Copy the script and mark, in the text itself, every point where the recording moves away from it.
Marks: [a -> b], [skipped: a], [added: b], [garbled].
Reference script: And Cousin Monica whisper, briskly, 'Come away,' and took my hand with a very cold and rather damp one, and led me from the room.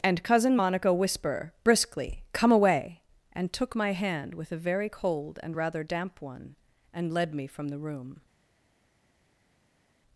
And Cousin Monica whisper, briskly, 'Come away,' and took my hand with a very cold and rather damp one, and led me from the room.